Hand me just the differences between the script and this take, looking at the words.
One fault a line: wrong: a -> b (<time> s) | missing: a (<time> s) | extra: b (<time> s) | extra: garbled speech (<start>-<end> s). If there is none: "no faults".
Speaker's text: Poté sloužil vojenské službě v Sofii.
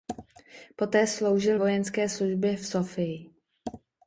no faults